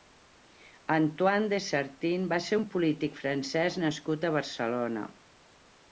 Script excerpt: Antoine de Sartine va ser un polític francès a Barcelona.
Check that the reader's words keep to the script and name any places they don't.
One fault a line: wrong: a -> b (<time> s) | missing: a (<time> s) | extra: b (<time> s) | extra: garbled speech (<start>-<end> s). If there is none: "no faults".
extra: nascut (3.9 s)